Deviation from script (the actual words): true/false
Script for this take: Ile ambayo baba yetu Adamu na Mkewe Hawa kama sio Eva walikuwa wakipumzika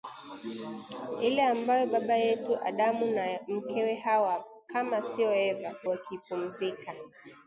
true